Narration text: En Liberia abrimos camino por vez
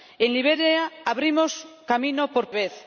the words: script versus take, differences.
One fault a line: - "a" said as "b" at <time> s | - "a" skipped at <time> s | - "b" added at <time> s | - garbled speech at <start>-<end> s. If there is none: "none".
none